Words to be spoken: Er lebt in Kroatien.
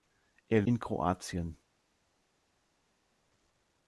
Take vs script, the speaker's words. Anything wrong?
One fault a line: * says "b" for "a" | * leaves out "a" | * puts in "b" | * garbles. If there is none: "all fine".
* leaves out "lebt"